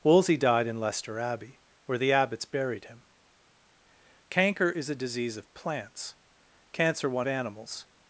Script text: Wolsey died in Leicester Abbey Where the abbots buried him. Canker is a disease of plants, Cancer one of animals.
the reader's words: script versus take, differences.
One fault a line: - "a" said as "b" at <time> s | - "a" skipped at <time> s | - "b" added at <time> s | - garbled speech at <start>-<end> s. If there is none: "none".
- "of" skipped at 7.3 s